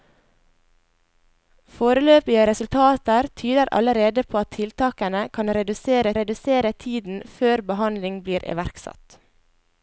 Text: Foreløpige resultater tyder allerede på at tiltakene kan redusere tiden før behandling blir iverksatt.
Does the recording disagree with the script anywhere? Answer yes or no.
yes